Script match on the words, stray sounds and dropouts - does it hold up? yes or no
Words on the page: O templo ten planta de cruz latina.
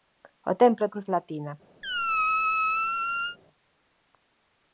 no